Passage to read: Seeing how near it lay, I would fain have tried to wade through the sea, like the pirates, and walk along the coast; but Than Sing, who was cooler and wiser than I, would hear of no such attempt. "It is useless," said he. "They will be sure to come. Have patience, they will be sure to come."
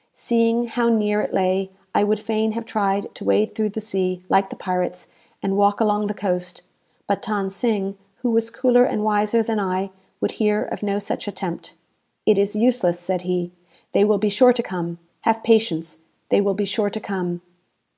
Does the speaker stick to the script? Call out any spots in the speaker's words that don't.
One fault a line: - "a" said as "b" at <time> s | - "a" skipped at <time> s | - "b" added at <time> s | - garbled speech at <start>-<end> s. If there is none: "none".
none